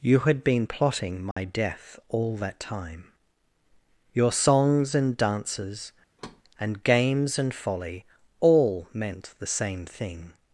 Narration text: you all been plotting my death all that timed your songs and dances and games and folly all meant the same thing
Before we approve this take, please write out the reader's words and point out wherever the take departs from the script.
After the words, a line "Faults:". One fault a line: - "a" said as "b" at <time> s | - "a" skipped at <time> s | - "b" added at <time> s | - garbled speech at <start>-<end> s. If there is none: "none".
you had been plotting my death all that time your songs and dances and games and folly all meant the same thing
Faults:
- "all" said as "had" at 0.2 s
- "timed" said as "time" at 2.6 s